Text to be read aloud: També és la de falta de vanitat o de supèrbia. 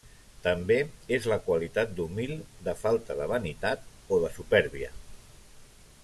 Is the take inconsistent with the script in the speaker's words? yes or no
yes